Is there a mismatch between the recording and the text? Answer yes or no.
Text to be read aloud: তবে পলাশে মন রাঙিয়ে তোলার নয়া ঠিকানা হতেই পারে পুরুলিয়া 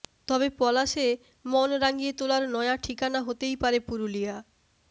no